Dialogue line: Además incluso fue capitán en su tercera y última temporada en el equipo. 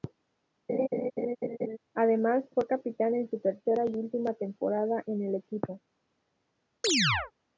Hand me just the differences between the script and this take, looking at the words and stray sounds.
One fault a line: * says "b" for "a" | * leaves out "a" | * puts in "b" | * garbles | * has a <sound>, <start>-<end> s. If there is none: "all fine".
* has a laugh, 0.7-1.8 s
* leaves out "incluso"
* has a chirp, 6.8-7.3 s